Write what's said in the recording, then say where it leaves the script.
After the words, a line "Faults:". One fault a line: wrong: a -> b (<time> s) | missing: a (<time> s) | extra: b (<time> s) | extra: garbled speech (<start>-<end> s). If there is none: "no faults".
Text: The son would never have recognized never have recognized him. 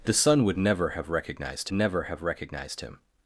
The son would never have recognized never have recognized him.
Faults:
no faults